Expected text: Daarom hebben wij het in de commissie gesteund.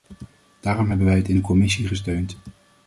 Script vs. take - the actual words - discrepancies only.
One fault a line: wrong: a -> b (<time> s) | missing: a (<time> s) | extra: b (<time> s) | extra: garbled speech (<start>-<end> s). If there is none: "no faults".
no faults